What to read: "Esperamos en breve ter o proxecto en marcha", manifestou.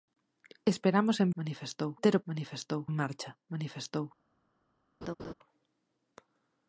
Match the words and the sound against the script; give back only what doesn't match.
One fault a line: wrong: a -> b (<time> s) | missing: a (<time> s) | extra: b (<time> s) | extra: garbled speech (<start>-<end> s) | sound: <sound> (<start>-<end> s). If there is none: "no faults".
wrong: breve -> manifestou (1.4 s)
wrong: proxecto -> manifestou (2.3 s)
sound: laugh (5.0-5.3 s)